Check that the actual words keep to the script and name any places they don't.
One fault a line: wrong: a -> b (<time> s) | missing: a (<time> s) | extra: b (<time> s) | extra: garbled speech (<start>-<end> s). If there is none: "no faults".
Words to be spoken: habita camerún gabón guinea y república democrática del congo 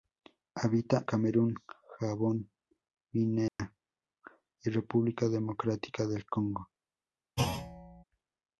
no faults